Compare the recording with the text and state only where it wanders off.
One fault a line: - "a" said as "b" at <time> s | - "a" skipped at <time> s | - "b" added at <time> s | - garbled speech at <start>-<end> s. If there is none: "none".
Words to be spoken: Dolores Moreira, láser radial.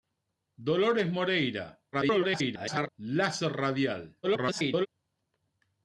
- garbled speech at 1.9-2.9 s
- garbled speech at 4.2-4.9 s